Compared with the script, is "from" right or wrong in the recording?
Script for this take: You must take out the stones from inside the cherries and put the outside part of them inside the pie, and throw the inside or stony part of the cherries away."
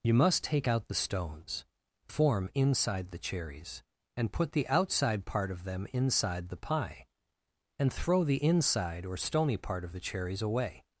wrong